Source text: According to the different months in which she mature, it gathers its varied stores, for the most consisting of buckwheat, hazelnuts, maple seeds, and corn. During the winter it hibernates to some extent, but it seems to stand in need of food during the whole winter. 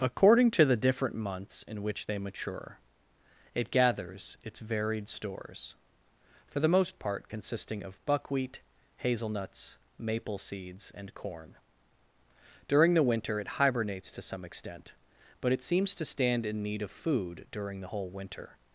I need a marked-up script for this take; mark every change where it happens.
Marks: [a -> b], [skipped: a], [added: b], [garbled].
According to the different months in which [she -> they] mature, it gathers its varied stores, for the most [added: part] consisting of buckwheat, hazelnuts, maple seeds, and corn. During the winter it hibernates to some extent, but it seems to stand in need of food during the whole winter.